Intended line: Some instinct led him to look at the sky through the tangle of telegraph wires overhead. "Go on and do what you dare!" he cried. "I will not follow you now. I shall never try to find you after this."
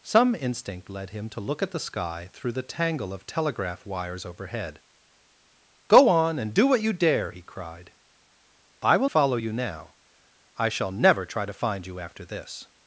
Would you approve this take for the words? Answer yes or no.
no